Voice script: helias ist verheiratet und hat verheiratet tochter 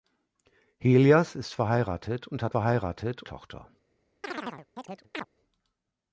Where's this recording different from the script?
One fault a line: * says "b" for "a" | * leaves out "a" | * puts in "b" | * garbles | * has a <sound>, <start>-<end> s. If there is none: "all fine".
* has a chirp, 4.2-5.3 s